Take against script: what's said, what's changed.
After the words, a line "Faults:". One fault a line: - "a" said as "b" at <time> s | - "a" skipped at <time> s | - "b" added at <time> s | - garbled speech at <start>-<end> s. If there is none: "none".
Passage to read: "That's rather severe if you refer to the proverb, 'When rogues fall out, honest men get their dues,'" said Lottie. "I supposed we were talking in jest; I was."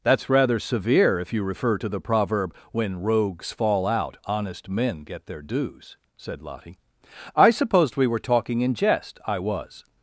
"That's rather severe if you refer to the proverb, 'When rogues fall out, honest men get their dues,'" said Lottie. "I supposed we were talking in jest; I was."
Faults:
none